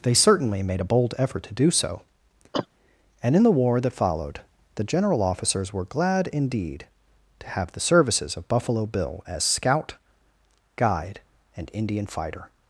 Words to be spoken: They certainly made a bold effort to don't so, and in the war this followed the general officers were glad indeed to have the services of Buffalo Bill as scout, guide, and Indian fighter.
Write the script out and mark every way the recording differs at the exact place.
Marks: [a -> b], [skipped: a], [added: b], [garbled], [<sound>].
They certainly made a bold effort to [don't -> do] so, [cough] and in the war [this -> that] followed the general officers were glad indeed to have the services of Buffalo Bill as scout, guide, and Indian fighter.